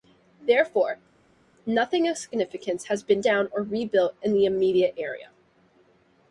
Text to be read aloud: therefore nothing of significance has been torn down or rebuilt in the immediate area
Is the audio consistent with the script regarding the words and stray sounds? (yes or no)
no